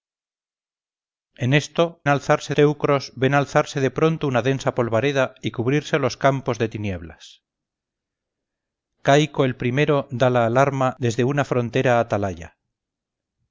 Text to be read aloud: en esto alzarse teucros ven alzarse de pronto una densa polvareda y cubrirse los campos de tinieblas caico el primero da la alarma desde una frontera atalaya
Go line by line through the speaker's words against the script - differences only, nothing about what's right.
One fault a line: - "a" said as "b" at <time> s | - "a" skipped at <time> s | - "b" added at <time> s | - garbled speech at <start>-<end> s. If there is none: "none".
none